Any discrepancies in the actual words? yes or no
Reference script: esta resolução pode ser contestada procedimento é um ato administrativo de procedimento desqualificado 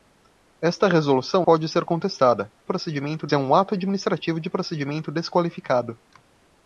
no